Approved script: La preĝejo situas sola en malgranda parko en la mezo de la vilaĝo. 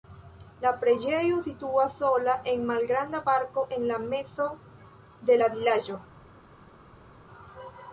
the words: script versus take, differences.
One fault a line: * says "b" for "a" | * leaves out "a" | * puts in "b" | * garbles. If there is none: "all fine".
all fine